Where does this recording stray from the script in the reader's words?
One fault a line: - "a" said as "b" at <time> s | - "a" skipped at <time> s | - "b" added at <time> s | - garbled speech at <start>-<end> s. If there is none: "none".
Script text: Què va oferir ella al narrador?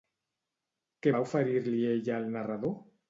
- "li" added at 1.7 s